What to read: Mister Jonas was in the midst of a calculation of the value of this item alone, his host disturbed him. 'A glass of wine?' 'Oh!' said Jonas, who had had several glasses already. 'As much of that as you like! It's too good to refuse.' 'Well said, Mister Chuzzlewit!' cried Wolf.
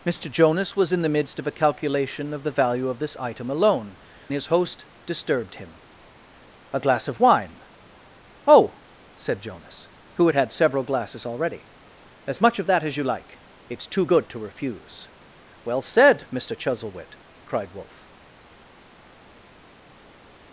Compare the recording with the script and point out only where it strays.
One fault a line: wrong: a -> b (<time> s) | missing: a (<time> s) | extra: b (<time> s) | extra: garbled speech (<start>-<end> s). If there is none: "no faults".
no faults